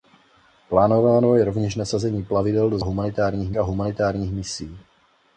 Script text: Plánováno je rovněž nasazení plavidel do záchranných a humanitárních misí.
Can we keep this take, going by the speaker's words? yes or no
no